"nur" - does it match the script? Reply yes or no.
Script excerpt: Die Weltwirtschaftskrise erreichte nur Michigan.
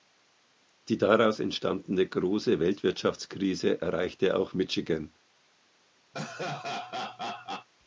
no